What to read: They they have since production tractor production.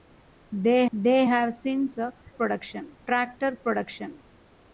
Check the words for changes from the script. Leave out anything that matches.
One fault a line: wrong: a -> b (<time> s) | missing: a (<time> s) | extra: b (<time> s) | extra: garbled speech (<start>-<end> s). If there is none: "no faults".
no faults